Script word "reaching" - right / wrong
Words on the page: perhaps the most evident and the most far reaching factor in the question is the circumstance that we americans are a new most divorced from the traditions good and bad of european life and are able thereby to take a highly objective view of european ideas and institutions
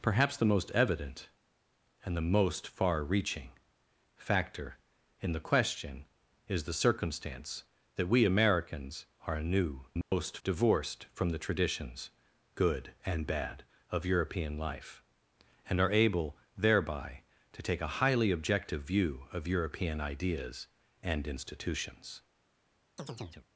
right